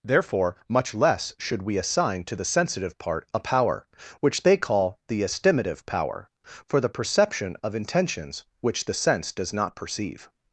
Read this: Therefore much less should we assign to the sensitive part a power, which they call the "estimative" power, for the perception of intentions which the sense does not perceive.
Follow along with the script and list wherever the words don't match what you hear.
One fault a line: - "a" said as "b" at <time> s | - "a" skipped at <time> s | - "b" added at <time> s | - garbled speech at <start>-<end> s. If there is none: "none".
none